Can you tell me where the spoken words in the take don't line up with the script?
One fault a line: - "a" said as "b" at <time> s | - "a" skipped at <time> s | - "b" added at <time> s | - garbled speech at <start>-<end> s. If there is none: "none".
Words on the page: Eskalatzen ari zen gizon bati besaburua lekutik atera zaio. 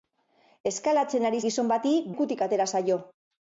- "zen" skipped at 1.4 s
- "besaburua" skipped at 2.0 s